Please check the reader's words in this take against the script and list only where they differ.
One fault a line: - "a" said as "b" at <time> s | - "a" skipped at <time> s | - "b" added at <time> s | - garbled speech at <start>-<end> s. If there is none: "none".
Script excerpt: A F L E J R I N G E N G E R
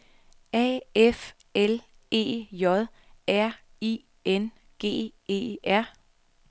- "N G E" skipped at 5.6 s